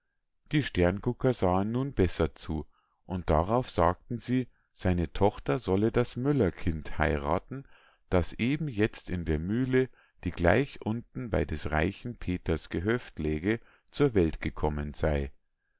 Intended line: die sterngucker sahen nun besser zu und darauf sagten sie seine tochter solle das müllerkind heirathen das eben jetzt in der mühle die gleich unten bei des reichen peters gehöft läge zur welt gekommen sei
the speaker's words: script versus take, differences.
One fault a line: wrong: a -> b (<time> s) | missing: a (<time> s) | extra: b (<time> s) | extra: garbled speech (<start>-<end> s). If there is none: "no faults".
no faults